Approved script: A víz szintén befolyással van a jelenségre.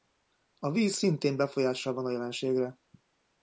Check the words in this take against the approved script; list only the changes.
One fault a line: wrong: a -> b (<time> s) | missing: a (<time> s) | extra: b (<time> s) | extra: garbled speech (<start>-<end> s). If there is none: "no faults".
no faults